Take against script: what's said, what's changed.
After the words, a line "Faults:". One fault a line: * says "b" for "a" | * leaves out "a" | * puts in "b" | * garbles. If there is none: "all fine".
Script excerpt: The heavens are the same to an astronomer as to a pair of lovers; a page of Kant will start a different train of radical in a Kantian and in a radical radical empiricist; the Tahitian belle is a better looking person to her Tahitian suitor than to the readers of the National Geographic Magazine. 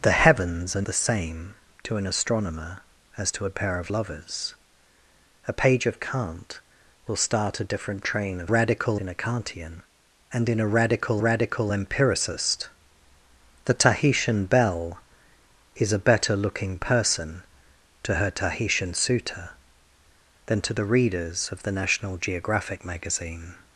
The heavens are the same to an astronomer as to a pair of lovers; a page of Kant will start a different train of radical in a Kantian and in a radical radical empiricist; the Tahitian belle is a better looking person to her Tahitian suitor than to the readers of the National Geographic Magazine.
Faults:
all fine